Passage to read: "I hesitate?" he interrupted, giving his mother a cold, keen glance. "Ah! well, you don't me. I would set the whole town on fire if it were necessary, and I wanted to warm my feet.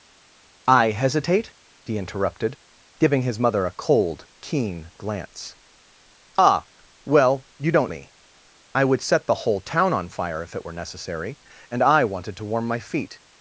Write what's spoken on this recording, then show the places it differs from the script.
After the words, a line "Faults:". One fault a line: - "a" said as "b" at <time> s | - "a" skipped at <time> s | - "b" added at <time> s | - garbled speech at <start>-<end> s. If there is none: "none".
"I hesitate?" he interrupted, giving his mother a cold, keen glance. "Ah! well, you don't me. I would set the whole town on fire if it were necessary, and I wanted to warm my feet.
Faults:
none